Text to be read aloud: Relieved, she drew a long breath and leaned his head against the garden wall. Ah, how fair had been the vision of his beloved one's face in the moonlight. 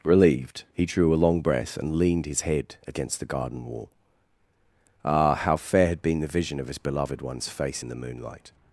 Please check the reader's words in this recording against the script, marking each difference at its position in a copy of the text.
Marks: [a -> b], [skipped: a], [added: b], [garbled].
Relieved, [she -> he] drew a long breath and leaned his head against the garden wall. Ah, how fair had been the vision of his beloved one's face in the moonlight.